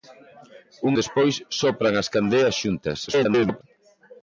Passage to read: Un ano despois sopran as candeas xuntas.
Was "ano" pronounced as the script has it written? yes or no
no